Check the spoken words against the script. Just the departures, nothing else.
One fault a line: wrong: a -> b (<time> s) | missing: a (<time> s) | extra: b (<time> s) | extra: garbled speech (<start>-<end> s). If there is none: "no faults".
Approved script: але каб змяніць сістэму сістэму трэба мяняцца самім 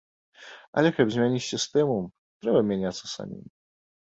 missing: сістэму (2.0 s)